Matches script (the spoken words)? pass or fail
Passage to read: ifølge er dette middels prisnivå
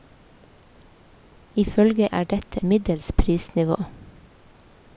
pass